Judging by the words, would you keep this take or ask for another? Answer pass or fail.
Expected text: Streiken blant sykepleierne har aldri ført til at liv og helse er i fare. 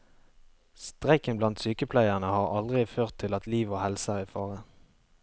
pass